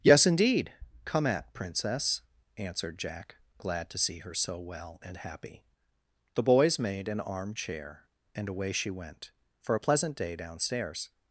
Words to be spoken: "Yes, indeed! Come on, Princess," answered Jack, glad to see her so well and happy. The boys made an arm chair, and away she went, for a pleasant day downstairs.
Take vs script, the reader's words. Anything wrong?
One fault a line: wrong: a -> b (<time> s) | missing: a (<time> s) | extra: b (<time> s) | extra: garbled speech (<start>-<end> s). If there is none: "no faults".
wrong: on -> at (1.3 s)